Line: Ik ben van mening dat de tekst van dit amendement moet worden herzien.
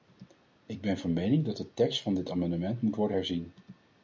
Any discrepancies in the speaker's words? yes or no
no